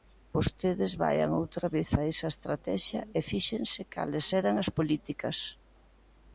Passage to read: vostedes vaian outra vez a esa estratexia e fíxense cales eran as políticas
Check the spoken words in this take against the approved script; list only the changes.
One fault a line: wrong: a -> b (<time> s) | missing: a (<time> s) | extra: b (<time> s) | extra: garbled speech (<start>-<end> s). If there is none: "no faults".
no faults